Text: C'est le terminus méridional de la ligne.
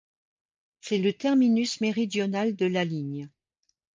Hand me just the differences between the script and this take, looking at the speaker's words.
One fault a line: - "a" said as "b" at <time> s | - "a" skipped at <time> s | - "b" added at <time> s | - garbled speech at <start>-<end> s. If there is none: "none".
none